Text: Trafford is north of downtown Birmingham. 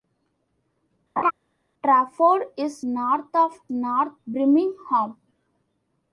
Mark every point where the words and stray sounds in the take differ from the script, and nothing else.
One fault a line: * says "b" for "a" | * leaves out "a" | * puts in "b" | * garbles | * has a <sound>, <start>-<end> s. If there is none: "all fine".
* has a laugh, 1.2-1.3 s
* says "north" for "downtown"